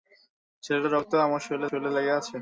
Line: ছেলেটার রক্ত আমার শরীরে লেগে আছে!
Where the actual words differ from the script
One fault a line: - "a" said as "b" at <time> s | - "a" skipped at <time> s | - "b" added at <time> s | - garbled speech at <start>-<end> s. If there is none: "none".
- "শরীরে" added at 1.7 s